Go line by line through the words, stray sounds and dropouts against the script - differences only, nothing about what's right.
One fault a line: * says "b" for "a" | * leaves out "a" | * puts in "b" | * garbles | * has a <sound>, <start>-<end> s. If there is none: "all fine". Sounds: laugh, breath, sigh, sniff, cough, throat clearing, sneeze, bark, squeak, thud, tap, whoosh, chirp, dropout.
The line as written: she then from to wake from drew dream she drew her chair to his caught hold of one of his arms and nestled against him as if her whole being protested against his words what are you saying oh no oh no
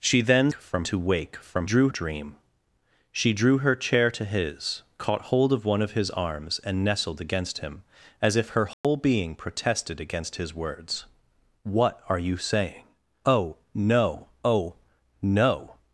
* has a dropout, 8.7-8.8 s